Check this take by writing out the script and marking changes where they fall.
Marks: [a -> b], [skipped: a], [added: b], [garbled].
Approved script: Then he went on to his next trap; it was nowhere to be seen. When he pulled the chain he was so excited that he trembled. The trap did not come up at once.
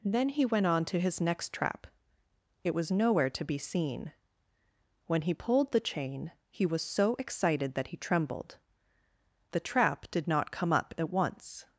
Then he went on to his next trap; it was nowhere to be seen. When he pulled the chain he was so excited that he trembled. The trap did not come up at once.